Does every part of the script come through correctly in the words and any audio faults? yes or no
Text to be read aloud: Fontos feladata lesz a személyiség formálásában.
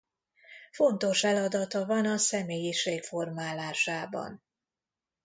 no